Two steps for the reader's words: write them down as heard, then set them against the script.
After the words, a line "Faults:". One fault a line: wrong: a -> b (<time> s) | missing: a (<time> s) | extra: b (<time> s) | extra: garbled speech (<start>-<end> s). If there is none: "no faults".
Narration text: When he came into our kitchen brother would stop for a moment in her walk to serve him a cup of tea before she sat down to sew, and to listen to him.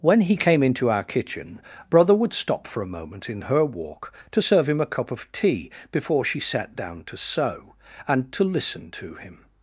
When he came into our kitchen brother would stop for a moment in her walk to serve him a cup of tea before she sat down to sew, and to listen to him.
Faults:
no faults